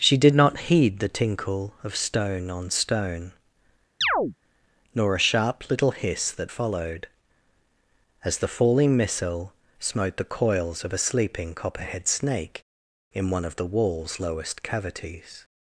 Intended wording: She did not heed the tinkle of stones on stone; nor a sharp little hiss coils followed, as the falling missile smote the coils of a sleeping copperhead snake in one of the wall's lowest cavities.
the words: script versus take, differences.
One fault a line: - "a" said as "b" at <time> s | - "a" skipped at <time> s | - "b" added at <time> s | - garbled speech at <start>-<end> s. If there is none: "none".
- "stones" said as "stone" at 1.9 s
- "coils" said as "that" at 6.3 s